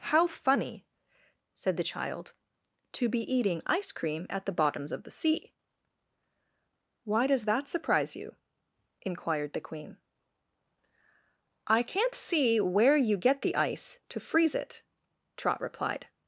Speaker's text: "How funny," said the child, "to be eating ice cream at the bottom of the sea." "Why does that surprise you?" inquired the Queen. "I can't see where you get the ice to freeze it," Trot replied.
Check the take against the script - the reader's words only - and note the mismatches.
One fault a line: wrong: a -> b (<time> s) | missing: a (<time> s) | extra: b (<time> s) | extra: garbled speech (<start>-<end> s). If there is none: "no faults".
wrong: bottom -> bottoms (4.5 s)